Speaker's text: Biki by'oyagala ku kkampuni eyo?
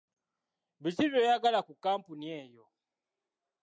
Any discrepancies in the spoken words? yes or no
no